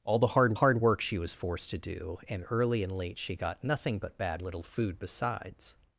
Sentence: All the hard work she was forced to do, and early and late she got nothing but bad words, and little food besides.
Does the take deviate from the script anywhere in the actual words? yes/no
yes